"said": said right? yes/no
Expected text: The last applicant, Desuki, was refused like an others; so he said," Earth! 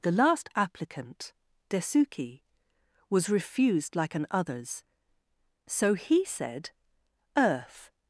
yes